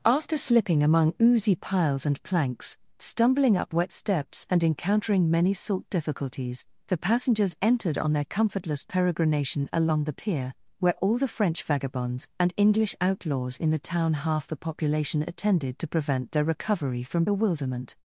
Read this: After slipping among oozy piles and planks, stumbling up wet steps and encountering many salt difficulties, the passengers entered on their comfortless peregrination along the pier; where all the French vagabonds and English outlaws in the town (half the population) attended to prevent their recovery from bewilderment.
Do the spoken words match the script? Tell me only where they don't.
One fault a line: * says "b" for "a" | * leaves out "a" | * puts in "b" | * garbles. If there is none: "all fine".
all fine